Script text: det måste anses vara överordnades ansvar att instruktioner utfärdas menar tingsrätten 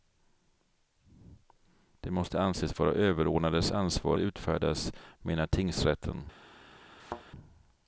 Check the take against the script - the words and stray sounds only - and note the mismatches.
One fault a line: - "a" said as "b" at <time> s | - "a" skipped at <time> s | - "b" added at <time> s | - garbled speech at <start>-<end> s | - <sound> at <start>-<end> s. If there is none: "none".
- "att instruktioner" skipped at 4.2 s
- thud at 7.0-7.2 s